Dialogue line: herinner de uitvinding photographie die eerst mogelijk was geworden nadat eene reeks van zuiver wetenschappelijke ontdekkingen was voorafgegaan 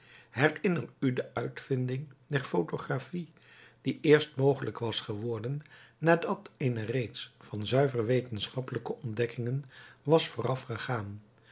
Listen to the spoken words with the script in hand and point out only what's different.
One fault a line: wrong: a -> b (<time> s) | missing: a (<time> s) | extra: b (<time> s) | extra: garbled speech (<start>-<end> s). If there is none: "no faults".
extra: u (1.0 s)
extra: der (2.3 s)